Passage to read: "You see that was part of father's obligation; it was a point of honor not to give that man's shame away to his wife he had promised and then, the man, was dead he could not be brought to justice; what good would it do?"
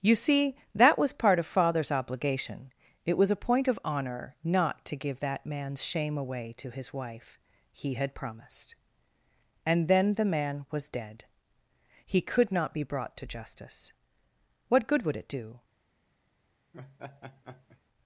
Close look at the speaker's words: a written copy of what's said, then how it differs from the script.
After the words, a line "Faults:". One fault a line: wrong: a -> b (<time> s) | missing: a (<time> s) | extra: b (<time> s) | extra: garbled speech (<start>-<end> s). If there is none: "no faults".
"You see that was part of father's obligation; it was a point of honor not to give that man's shame away to his wife he had promised and then, the man, was dead he could not be brought to justice; what good would it do?"
Faults:
no faults